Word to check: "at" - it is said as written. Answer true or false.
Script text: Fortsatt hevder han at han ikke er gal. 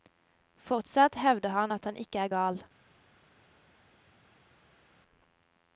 true